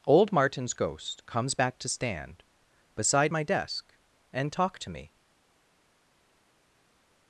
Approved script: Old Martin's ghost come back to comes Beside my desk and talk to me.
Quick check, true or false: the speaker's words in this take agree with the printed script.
false